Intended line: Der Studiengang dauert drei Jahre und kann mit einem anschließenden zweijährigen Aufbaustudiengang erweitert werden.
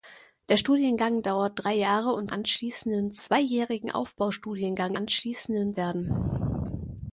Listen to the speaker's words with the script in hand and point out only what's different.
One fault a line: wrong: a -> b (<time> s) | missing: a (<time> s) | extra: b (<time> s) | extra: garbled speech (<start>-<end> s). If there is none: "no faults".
missing: kann mit einem (2.3 s)
wrong: erweitert -> anschließenden (4.9 s)